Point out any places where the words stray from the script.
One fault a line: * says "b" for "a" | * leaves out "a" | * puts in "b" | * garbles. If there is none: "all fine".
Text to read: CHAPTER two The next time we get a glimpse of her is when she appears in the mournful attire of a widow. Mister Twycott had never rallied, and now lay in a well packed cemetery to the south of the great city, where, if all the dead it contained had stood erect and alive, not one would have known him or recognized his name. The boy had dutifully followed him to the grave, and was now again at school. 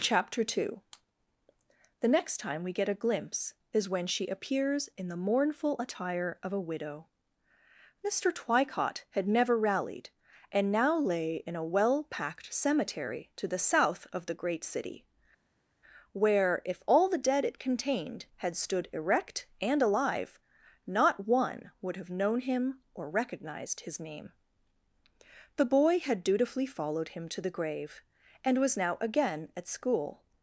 * leaves out "of her"